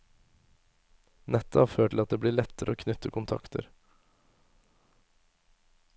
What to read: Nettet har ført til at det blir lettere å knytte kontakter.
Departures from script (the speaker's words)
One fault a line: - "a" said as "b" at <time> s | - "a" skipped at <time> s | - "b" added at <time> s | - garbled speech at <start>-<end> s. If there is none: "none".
none